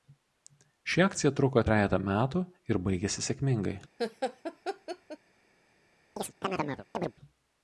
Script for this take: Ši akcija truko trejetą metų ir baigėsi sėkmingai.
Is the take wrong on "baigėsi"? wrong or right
right